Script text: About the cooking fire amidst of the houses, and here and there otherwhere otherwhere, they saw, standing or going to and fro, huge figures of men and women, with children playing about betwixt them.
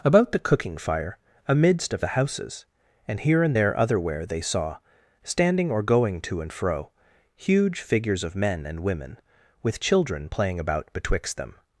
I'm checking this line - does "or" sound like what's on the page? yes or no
yes